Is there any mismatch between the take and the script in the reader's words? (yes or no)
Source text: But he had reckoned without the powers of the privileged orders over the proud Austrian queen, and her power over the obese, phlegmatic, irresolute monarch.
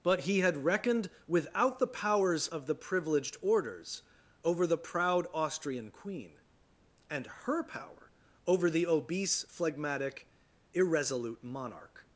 no